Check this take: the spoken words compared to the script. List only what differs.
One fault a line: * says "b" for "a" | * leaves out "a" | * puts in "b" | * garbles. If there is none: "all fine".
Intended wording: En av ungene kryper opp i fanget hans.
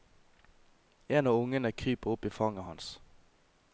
all fine